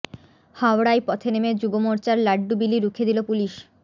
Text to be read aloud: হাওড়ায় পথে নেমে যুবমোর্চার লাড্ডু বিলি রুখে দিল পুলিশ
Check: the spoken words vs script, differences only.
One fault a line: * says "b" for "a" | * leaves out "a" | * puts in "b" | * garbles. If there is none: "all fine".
all fine